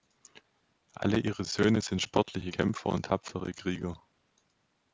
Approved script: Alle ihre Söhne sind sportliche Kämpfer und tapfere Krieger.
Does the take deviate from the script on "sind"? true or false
false